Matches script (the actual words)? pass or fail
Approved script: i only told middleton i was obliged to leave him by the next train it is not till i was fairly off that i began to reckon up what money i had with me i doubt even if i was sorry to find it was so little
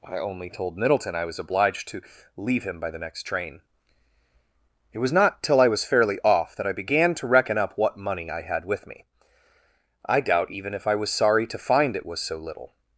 fail